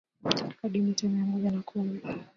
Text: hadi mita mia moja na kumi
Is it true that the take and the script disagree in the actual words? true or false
false